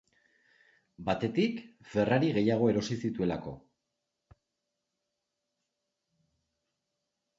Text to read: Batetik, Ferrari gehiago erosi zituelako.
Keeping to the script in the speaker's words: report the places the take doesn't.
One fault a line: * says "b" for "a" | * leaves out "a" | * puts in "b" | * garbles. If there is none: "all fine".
all fine